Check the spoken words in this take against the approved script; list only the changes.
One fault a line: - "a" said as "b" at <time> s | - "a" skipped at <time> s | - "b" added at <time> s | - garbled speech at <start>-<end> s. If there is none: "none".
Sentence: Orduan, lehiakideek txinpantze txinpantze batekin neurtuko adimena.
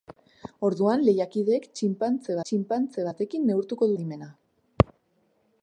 none